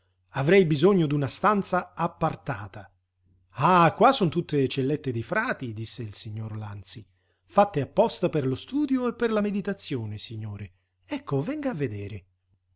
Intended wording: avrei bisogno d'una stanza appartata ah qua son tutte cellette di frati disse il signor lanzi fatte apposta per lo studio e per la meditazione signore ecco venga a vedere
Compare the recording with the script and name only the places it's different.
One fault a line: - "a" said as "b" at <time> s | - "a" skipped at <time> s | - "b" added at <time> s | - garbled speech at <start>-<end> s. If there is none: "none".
none